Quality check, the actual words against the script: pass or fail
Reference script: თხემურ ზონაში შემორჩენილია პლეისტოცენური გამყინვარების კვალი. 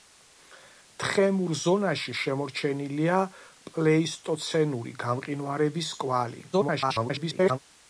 fail